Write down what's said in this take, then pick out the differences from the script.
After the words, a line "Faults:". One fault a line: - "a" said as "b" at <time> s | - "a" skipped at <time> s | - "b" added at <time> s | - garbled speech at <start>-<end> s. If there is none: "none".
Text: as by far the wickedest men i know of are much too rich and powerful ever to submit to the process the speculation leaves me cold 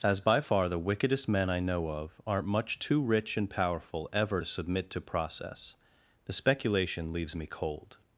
as by far the wickedest men i know of aren't much too rich and powerful ever to submit to process the speculation leaves me cold
Faults:
- "are" said as "aren't" at 2.2 s
- "the" skipped at 5.0 s